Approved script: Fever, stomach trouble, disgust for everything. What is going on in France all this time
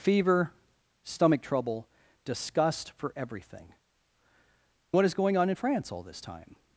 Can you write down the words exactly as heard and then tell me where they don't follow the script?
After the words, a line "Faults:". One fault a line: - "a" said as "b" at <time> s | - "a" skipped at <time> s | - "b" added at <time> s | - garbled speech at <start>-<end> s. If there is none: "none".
Fever, stomach trouble, disgust for everything. What is going on in France all this time
Faults:
none